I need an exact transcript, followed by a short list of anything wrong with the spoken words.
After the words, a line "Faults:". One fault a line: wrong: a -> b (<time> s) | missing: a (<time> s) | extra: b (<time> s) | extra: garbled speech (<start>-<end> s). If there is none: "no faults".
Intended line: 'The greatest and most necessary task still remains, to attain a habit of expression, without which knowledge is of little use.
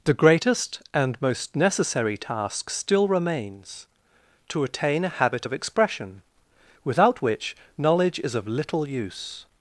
'The greatest and most necessary task still remains, to attain a habit of expression, without which knowledge is of little use.
Faults:
no faults